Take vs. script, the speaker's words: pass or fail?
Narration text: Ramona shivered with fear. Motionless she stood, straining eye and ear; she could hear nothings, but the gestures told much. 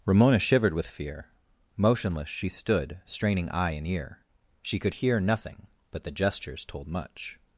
fail